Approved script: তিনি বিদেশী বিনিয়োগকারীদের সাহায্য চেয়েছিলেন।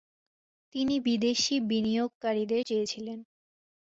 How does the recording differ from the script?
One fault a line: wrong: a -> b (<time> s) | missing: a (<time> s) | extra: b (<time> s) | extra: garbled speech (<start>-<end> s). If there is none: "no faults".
missing: সাহায্য (2.6 s)